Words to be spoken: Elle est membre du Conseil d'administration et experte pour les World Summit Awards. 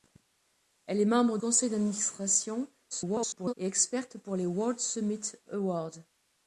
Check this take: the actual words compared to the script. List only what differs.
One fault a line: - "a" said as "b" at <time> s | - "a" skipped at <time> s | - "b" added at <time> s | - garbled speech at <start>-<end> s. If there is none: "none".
- "du" skipped at 1.4 s
- garbled speech at 2.9-3.5 s